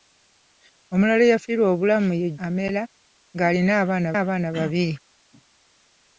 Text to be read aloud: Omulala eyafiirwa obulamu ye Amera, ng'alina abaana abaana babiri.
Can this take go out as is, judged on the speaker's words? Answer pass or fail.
pass